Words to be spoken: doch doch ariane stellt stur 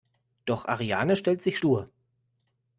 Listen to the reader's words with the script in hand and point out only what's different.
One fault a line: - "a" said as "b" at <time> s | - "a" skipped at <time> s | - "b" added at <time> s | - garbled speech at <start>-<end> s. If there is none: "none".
- "doch" skipped at 0.7 s
- "sich" added at 1.4 s